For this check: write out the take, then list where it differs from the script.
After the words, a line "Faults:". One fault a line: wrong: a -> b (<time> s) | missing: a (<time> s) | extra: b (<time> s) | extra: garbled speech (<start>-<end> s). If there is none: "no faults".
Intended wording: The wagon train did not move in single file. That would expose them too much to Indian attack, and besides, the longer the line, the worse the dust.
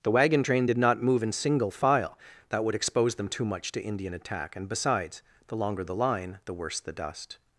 The wagon train did not move in single file. That would expose them too much to Indian attack, and besides, the longer the line, the worse the dust.
Faults:
no faults